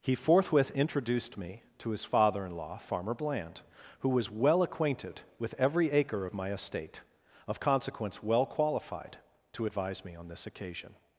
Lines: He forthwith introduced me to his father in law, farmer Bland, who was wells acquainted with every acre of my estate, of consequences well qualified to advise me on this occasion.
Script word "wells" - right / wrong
wrong